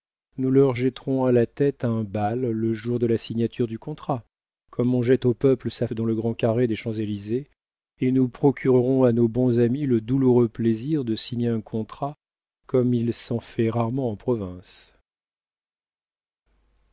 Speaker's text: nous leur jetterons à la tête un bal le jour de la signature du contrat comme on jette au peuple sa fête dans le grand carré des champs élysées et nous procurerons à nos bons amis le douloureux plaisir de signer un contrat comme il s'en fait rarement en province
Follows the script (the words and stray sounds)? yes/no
no